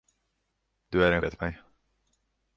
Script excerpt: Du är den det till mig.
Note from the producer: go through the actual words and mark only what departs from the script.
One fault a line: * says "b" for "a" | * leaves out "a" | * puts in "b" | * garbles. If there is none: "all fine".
all fine